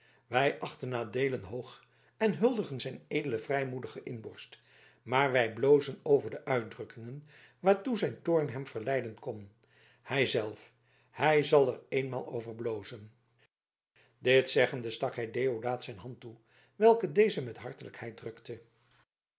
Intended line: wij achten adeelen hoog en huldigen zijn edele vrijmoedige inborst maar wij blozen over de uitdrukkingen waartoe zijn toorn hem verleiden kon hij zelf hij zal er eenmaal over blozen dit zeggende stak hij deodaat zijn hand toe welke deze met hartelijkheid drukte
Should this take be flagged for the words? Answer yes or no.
no